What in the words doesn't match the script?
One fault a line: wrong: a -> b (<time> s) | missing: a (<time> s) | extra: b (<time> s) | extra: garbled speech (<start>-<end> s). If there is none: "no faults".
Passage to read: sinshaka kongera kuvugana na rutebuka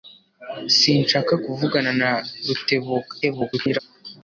missing: kongera (1.3 s)
extra: garbled speech (3.2-3.8 s)